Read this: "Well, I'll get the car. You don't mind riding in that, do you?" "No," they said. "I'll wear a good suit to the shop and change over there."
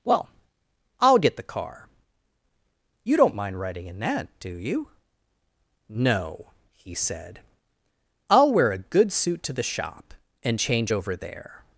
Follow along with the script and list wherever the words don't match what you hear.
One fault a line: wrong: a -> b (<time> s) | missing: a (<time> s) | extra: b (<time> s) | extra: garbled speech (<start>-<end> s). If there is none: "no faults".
wrong: they -> he (6.8 s)